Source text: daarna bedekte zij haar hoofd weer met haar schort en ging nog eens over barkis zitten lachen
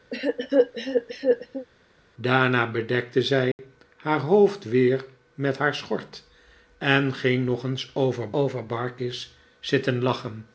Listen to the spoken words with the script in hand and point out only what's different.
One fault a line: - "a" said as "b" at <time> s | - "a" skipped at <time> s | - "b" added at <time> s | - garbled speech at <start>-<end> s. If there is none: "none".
- "over" added at 8.3 s